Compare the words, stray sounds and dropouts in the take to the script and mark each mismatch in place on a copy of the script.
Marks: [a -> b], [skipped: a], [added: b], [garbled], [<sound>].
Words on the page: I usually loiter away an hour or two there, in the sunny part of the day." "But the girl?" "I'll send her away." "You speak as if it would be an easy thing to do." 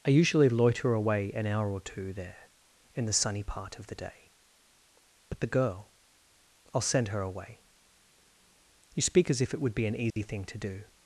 I usually loiter away an hour or two there, in the sunny part of the day." "But the girl?" "I'll send her away." "You speak as if it would be an easy [dropout] thing to do."